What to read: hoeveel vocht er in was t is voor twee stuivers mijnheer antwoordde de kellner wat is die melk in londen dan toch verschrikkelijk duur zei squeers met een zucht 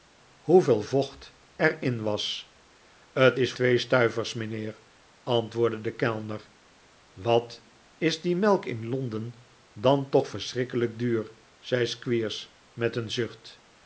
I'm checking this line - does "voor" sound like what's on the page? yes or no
no